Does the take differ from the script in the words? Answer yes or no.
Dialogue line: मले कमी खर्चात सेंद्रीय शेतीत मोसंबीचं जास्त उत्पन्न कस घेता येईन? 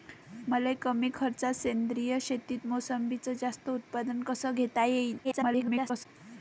yes